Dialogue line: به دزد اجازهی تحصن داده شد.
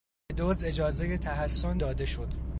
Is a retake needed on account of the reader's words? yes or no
no